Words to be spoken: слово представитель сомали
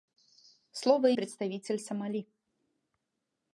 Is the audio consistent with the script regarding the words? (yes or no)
yes